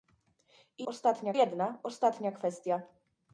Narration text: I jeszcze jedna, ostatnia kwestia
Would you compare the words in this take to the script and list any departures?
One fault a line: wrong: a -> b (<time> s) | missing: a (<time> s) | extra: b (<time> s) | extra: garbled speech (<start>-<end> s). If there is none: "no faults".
wrong: jeszcze -> ostatnia (0.8 s)